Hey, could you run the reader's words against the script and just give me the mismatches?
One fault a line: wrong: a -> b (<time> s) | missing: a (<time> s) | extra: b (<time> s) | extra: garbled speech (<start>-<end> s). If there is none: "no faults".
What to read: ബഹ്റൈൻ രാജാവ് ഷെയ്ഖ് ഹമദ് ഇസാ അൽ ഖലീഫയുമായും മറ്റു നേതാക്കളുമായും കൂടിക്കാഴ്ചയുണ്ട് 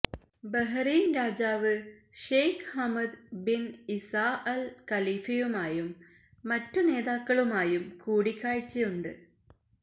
extra: ബിൻ (3.5 s)